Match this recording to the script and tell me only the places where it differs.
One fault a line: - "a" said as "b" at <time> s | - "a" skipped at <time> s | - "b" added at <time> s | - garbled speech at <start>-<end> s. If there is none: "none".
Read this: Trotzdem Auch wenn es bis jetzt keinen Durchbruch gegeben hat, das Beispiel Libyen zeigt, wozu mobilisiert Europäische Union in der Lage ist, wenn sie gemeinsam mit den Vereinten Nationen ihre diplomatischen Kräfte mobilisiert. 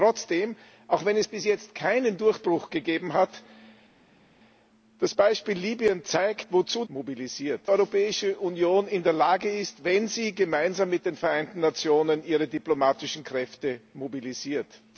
none